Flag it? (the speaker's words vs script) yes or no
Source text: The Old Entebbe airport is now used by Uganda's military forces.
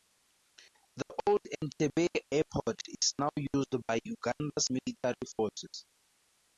no